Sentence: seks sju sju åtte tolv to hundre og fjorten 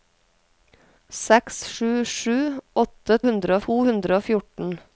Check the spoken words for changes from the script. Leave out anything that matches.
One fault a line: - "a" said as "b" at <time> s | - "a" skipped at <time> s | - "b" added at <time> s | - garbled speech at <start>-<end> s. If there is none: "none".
- "tolv" said as "hundre" at 3.3 s